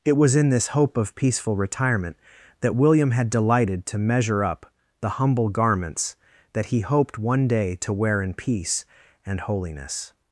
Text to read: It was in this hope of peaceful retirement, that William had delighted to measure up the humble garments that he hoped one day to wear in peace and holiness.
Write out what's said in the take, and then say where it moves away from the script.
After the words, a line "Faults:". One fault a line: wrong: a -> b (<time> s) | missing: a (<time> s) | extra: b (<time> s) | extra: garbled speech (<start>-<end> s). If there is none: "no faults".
It was in this hope of peaceful retirement, that William had delighted to measure up the humble garments that he hoped one day to wear in peace and holiness.
Faults:
no faults